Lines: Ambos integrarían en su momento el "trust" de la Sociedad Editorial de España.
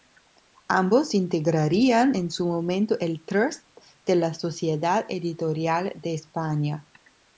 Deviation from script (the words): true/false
false